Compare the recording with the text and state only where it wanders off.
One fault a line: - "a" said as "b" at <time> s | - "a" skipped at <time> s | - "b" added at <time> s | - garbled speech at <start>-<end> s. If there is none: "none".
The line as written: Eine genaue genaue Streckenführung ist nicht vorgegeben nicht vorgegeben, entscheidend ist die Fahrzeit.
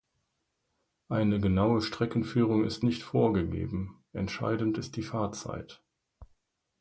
- "genaue" skipped at 1.8 s
- "nicht vorgegeben" skipped at 4.0 s